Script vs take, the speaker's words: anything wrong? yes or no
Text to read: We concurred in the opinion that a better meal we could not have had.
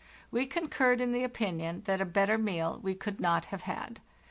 no